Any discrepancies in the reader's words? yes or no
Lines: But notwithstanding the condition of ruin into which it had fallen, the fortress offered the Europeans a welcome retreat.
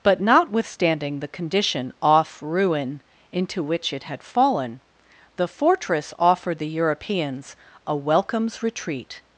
yes